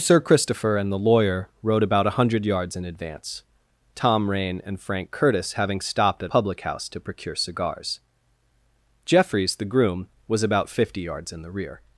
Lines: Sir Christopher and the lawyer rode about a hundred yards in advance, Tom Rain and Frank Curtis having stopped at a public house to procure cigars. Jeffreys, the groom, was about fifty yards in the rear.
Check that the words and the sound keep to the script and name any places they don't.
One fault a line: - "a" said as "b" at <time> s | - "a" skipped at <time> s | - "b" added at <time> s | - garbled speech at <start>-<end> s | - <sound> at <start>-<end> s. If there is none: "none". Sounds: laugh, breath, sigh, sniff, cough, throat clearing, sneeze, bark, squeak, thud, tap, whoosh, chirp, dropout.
- "a" skipped at 6.3 s